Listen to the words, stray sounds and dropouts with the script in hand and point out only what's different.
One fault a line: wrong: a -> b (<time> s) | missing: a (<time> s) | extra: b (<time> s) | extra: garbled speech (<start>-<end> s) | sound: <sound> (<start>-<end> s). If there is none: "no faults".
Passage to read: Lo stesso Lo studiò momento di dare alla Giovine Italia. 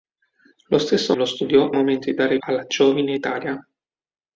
no faults